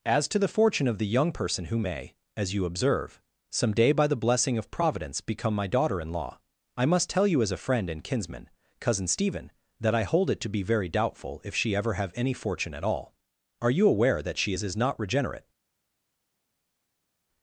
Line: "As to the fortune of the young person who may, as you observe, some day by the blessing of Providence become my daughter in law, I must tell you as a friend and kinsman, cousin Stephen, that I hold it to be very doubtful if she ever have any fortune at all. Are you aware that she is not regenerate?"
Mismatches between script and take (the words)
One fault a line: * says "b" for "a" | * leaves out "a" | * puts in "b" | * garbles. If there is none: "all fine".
* puts in "is"